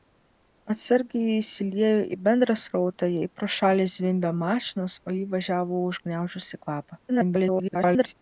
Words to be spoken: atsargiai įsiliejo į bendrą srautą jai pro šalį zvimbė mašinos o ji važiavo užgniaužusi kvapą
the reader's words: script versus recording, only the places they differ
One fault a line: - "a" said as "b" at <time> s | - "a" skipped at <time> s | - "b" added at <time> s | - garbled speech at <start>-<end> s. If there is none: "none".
- garbled speech at 7.1-8.1 s